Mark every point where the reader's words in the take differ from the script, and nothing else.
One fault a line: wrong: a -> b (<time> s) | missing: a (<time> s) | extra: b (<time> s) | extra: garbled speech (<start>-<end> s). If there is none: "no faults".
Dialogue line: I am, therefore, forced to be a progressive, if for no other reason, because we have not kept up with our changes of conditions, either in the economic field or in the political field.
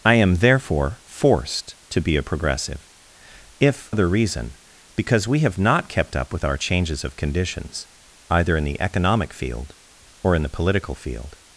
missing: for no (3.9 s)